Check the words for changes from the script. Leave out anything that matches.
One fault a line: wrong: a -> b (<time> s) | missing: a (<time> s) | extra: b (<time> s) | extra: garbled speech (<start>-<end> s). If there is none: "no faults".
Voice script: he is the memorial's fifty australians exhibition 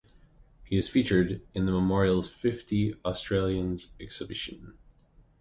extra: featured in (0.9 s)